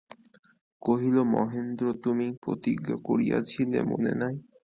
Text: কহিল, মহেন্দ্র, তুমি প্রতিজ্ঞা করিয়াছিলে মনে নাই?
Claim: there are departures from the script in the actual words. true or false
false